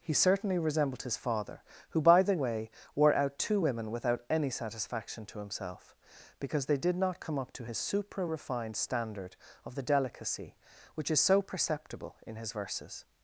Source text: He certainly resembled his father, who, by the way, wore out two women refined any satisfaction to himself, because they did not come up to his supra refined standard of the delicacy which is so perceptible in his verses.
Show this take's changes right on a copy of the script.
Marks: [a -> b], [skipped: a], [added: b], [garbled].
He certainly resembled his father, who, by the way, wore out two women [refined -> without] any satisfaction to himself, because they did not come up to his supra refined standard of the delicacy which is so perceptible in his verses.